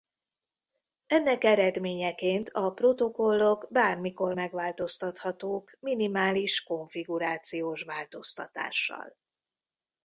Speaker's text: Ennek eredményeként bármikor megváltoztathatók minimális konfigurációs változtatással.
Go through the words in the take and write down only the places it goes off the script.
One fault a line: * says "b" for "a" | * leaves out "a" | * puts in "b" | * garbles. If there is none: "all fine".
* puts in "a protokollok"